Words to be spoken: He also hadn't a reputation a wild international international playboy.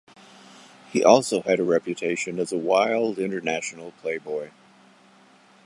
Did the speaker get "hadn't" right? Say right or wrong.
wrong